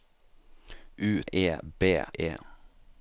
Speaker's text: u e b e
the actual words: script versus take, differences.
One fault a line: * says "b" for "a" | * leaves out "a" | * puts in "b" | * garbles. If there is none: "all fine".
all fine